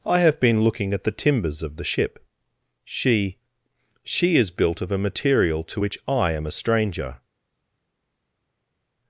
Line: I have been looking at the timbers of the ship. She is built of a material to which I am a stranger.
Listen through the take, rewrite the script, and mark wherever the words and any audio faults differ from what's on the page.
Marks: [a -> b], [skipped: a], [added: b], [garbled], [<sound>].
I have been looking at the timbers of the ship. She [added: She] is built of a material to which I am a stranger.